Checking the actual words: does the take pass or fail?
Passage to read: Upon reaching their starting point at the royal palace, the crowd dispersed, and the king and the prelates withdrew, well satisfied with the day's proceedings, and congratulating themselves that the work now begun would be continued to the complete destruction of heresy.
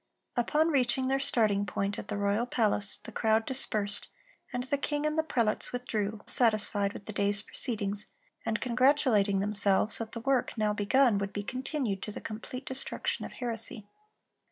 fail